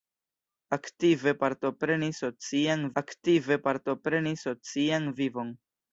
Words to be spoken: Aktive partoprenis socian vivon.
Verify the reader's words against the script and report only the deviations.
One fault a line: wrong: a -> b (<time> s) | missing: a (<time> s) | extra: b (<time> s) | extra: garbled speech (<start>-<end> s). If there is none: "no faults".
extra: aktive partoprenis socian (3.0 s)